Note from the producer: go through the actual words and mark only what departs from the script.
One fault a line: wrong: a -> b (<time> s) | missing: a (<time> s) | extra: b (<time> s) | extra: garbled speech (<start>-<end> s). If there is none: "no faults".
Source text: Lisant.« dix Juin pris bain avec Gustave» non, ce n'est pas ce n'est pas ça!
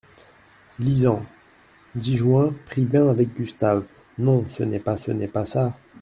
no faults